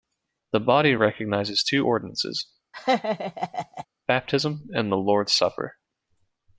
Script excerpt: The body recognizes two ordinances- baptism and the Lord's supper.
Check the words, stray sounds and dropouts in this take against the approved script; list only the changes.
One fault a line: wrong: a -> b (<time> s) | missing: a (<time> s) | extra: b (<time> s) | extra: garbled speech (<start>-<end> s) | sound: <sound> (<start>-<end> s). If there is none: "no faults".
sound: laugh (2.7-3.9 s)